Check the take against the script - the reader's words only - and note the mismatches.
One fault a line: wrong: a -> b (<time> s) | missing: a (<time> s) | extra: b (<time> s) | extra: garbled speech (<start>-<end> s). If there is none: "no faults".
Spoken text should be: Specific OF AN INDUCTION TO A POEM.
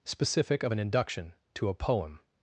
no faults